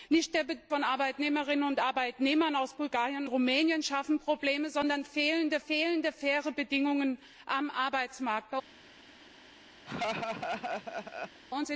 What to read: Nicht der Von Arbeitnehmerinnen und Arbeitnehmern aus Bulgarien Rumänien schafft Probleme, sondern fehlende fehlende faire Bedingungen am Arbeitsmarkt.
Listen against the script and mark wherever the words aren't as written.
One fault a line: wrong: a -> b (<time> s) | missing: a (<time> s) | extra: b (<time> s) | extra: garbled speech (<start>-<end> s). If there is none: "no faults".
no faults